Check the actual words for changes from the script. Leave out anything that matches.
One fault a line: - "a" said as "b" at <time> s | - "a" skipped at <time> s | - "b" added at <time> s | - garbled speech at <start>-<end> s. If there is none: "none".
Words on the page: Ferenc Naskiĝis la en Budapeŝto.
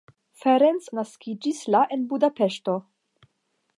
none